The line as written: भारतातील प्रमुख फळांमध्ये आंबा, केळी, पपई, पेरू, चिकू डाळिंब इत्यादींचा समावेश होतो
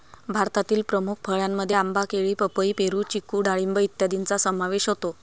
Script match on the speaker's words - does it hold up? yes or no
yes